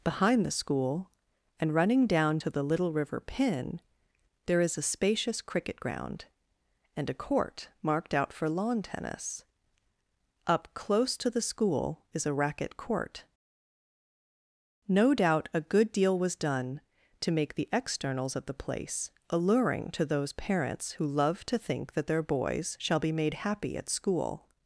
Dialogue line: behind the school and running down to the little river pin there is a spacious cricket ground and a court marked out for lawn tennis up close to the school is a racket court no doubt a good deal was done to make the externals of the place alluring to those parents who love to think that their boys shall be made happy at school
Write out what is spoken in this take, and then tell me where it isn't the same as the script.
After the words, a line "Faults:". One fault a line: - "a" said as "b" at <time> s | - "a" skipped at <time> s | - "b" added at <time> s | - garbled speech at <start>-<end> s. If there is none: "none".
behind the school and running down to the little river pin there is a spacious cricket ground and a court marked out for lawn tennis up close to the school is a racket court no doubt a good deal was done to make the externals of the place alluring to those parents who love to think that their boys shall be made happy at school
Faults:
none